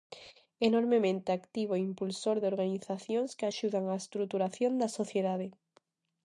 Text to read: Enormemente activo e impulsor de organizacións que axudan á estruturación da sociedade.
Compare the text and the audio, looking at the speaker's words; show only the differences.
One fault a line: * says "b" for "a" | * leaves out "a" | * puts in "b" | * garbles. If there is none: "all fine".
all fine